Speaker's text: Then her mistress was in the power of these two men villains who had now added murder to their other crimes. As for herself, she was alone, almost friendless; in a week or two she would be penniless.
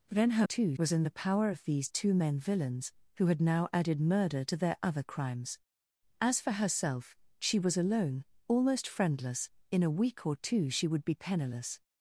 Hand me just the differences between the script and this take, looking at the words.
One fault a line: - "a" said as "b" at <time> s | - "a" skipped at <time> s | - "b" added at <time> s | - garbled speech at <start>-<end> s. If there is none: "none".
- "mistress" said as "two" at 0.4 s